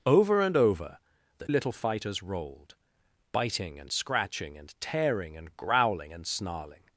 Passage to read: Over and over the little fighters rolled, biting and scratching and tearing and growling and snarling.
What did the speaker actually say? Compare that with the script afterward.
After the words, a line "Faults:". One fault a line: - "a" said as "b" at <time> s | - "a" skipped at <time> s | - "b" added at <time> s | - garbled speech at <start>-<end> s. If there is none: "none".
Over and over the little fighters rolled, biting and scratching and tearing and growling and snarling.
Faults:
none